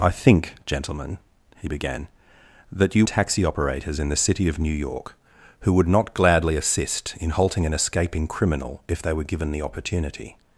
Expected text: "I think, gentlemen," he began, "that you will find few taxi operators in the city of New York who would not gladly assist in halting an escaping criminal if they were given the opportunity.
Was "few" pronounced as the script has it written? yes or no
no